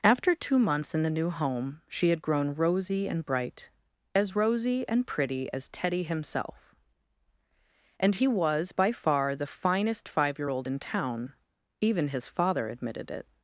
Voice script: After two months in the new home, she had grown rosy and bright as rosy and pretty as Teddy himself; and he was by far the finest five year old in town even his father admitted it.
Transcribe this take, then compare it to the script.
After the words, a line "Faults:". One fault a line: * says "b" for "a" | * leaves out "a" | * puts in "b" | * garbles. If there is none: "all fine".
After two months in the new home, she had grown rosy and bright as rosy and pretty as Teddy himself; and he was by far the finest five year old in town even his father admitted it.
Faults:
all fine